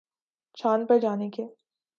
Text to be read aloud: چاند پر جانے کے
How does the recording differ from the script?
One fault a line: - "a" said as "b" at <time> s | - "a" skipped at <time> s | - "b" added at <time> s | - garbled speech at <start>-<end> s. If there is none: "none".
none